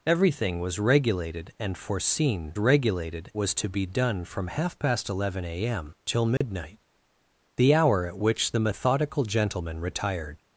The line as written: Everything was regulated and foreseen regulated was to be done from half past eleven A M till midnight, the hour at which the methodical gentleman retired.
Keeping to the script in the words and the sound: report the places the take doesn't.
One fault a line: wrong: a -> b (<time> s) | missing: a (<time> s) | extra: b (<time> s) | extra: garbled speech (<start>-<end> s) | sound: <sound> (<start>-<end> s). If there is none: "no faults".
sound: dropout (6.4-6.4 s)